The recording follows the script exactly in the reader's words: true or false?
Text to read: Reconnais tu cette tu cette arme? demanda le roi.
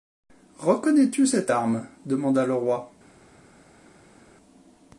false